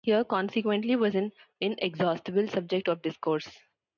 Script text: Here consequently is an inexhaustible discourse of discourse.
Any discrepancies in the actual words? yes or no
yes